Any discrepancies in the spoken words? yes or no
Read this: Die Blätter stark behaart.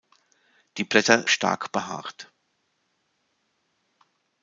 no